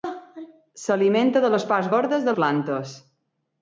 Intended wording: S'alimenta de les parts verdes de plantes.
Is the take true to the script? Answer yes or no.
yes